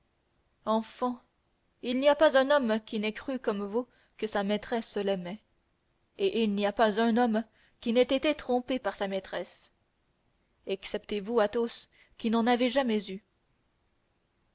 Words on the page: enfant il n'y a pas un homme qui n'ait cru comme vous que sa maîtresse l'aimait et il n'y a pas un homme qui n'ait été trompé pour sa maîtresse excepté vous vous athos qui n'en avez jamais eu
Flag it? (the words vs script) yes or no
yes